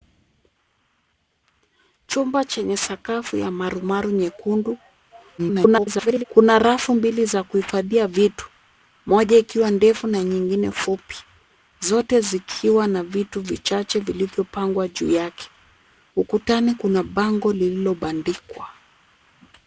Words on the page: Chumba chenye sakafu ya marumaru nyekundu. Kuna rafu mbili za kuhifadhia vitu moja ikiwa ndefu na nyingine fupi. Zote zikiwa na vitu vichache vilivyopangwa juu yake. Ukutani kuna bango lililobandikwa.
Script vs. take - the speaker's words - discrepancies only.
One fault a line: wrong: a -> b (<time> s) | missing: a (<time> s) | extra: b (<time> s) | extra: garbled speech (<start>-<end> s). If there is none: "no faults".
extra: garbled speech (5.4-6.2 s)